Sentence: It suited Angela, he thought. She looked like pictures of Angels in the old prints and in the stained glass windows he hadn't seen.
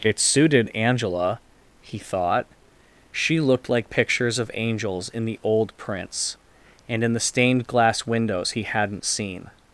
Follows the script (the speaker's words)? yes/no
yes